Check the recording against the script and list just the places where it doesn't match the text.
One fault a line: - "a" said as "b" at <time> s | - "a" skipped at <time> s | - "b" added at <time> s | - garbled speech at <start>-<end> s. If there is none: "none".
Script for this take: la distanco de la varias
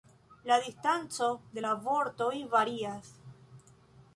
- "vortoj" added at 1.9 s